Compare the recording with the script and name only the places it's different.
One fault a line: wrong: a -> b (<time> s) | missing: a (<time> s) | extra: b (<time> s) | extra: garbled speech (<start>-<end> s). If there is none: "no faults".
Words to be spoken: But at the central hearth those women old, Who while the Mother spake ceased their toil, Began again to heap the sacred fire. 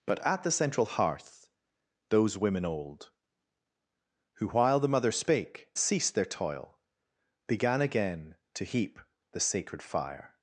no faults